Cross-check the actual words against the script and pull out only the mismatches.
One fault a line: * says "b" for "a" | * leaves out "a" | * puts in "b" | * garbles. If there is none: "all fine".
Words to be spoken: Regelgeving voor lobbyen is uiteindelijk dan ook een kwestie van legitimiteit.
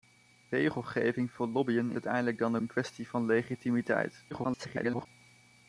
* leaves out "is"
* leaves out "ook"
* garbles